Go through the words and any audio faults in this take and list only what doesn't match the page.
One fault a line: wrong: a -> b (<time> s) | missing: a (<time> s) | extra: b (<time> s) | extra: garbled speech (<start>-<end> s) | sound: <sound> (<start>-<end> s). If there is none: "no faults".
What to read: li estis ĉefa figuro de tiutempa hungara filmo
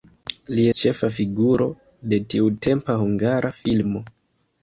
missing: estis (0.6 s)